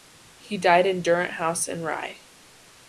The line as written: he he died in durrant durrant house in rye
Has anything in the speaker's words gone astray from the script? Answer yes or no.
yes